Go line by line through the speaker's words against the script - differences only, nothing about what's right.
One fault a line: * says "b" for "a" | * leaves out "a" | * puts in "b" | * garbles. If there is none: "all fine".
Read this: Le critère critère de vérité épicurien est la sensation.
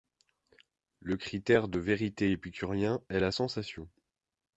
* leaves out "critère"